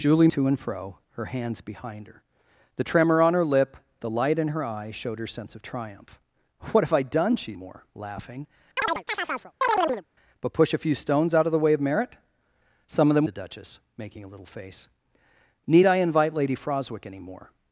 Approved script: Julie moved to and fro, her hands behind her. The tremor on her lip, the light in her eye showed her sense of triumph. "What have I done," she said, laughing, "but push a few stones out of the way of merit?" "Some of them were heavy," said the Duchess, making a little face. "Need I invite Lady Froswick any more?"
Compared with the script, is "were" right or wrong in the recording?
wrong